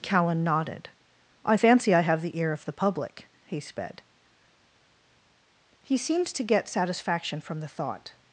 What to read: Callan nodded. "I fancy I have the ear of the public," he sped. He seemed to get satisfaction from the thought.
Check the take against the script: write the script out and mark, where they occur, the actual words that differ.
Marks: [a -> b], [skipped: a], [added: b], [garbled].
Callan nodded. "I fancy I have the ear of the public," he sped. He seemed to get satisfaction from the thought.